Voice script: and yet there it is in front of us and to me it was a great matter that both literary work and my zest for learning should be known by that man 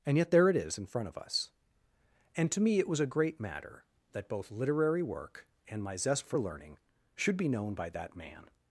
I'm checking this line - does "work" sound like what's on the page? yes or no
yes